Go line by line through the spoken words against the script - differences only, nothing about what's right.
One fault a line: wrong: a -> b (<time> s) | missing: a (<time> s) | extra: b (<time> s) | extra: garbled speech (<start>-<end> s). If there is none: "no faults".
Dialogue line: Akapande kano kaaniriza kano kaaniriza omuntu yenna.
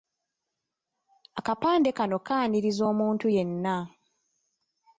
missing: kano kaaniriza (2.8 s)